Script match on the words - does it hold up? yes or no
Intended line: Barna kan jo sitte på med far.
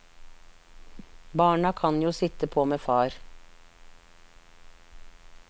yes